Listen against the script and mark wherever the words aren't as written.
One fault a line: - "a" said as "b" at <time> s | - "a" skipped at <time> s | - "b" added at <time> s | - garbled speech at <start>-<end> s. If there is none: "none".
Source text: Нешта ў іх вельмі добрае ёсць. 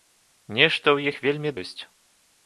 - "добрае" skipped at 1.5 s